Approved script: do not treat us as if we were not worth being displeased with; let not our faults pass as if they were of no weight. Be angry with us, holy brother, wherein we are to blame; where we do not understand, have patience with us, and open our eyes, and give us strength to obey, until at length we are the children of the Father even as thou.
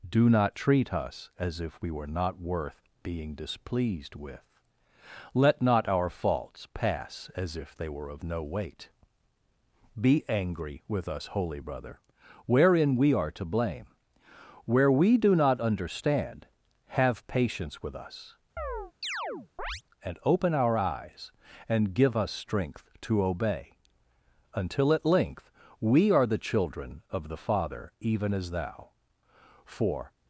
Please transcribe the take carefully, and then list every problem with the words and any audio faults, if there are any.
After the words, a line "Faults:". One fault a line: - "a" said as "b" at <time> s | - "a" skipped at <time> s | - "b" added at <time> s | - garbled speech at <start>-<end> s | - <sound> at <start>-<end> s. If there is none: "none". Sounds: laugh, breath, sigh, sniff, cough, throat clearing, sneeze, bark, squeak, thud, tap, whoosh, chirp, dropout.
do not treat us as if we were not worth being displeased with; let not our faults pass as if they were of no weight. Be angry with us, holy brother, wherein we are to blame; where we do not understand, have patience with us, and open our eyes, and give us strength to obey, until at length we are the children of the Father even as thou. For
Faults:
- chirp at 18.6-19.8 s
- "For" added at 29.6 s